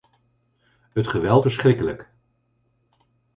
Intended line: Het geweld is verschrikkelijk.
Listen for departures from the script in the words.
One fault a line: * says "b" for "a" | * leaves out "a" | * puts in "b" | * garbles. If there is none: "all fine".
* leaves out "is"